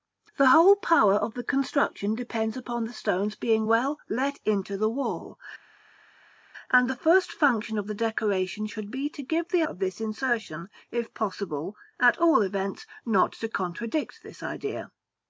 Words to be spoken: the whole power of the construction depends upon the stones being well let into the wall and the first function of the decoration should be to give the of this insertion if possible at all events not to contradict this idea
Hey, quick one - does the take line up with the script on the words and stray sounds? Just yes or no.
yes